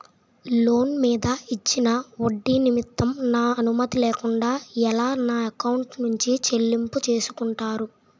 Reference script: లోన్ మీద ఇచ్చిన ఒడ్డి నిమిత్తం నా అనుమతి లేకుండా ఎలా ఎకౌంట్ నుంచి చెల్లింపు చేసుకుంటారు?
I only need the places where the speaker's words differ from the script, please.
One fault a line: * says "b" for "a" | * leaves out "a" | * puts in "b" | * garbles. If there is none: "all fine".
* puts in "నా"